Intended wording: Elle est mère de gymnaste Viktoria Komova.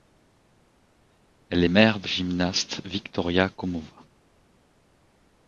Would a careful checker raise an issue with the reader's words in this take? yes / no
no